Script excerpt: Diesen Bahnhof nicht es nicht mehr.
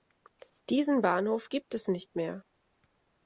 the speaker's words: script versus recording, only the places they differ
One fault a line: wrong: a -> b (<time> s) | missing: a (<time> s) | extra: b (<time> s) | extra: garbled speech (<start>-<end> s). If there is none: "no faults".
wrong: nicht -> gibt (1.5 s)